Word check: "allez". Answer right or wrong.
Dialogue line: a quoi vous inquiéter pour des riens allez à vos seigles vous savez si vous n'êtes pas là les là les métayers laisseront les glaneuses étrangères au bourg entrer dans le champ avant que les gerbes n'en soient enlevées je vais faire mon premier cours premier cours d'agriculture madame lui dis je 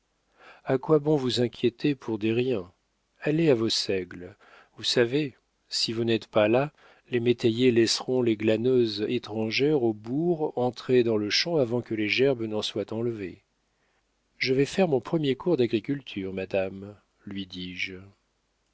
right